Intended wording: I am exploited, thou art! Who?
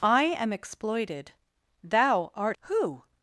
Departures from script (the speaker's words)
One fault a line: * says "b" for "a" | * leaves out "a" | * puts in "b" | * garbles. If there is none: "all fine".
all fine